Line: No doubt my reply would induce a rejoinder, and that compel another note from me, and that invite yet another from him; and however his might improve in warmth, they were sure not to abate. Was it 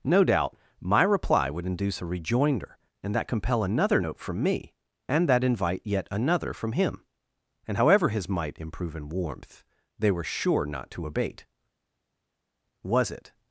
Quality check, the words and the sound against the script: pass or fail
pass